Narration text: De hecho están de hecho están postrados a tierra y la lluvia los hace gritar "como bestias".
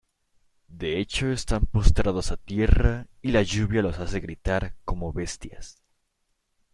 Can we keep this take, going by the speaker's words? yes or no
no